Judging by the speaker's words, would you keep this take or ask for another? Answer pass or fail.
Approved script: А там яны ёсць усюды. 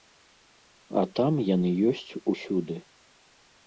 pass